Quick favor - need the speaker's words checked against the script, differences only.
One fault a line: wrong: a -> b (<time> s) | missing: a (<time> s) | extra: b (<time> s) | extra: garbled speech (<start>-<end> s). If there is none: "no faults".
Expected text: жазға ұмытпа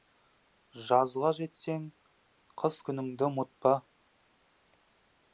extra: жетсең қыс күніңді (1.4 s)